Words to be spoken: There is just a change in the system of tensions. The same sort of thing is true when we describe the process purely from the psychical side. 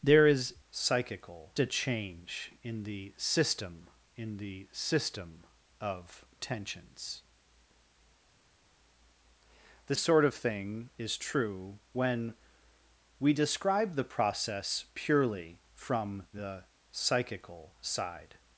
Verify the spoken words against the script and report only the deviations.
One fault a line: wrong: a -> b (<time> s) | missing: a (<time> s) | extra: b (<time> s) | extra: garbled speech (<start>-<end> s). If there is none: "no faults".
wrong: just -> psychical (0.7 s)
extra: in the system (4.2 s)
missing: same (9.9 s)